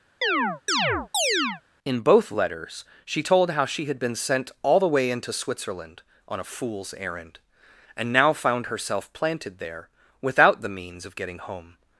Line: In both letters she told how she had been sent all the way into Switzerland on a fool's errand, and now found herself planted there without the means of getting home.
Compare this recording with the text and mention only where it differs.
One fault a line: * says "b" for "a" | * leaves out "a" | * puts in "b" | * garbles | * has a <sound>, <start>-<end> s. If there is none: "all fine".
* has a chirp, 0.2-1.6 s